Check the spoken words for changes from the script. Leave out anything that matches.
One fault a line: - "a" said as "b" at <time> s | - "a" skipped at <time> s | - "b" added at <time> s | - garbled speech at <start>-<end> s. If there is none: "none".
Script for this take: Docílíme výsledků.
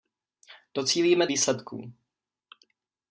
none